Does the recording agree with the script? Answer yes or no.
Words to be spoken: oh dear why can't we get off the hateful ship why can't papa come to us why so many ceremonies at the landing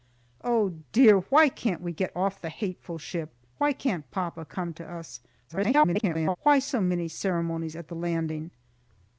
no